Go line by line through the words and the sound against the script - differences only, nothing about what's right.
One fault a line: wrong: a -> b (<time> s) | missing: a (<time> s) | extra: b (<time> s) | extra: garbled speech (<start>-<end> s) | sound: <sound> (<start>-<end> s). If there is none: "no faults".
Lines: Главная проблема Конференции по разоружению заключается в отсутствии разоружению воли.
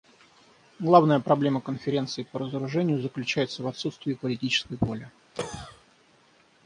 wrong: разоружению -> политической (4.2 s)
sound: cough (5.3-5.8 s)